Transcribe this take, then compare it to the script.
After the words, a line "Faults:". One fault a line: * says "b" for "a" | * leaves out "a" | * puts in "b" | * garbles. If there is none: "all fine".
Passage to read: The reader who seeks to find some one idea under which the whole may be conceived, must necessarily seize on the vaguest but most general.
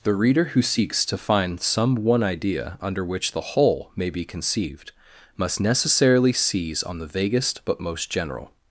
The reader who seeks to find some one idea under which the whole may be conceived, must necessarily seize on the vaguest but most general.
Faults:
all fine